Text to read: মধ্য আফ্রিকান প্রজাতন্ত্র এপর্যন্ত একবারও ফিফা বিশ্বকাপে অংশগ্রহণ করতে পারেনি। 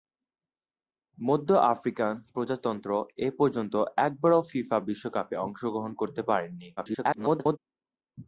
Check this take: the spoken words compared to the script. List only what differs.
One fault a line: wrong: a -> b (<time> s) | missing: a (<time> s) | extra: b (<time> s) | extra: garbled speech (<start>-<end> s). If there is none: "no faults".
extra: garbled speech (6.8-7.6 s)